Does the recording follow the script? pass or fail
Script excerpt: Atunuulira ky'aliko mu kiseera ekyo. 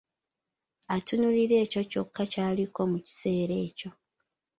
fail